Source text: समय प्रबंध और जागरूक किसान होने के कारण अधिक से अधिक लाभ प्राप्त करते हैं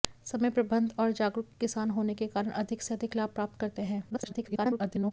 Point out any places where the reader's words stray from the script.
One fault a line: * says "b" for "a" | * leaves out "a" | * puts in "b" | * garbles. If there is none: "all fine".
* garbles